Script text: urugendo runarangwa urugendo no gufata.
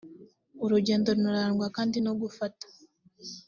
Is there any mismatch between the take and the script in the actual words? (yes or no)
yes